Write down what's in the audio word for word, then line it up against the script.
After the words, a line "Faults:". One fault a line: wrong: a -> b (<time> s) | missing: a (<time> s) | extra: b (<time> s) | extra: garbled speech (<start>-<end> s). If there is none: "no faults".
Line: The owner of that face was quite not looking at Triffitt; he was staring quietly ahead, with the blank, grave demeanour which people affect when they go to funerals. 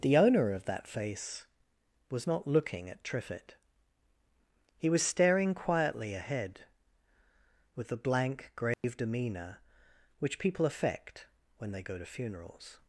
The owner of that face was not looking at Triffitt; he was staring quietly ahead, with the blank, grave demeanour which people affect when they go to funerals.
Faults:
missing: quite (2.2 s)